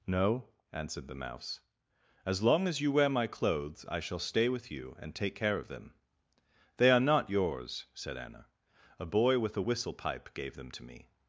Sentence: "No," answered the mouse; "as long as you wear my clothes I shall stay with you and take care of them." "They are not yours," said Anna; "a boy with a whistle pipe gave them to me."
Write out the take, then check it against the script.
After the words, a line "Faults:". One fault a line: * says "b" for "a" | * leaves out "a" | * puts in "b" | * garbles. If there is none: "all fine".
"No," answered the mouse; "as long as you wear my clothes I shall stay with you and take care of them." "They are not yours," said Anna; "a boy with a whistle pipe gave them to me."
Faults:
all fine